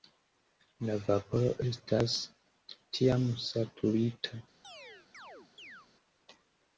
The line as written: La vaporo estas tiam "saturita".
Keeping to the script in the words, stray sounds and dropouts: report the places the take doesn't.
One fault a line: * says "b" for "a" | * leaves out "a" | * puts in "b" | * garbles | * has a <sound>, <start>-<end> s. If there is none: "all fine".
* has a chirp, 4.6-5.9 s